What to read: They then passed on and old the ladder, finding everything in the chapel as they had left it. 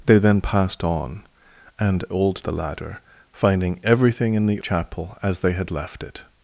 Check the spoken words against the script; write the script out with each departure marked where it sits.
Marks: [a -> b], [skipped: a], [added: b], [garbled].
They then passed on and old the ladder, finding everything in the chapel as they had left it.